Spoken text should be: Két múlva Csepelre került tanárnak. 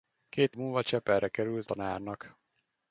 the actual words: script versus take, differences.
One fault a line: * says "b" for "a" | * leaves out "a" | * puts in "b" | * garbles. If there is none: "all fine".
all fine